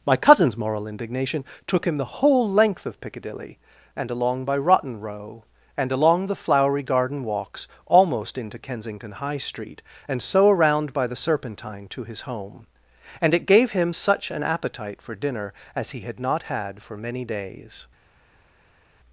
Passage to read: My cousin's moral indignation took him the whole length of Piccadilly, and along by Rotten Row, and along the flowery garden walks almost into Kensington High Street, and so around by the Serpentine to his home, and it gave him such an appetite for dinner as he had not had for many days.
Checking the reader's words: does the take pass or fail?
pass